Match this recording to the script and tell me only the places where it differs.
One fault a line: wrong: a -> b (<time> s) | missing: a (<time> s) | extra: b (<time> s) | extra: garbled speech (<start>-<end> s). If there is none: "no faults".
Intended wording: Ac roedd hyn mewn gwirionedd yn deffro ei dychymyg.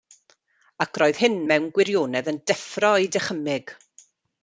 no faults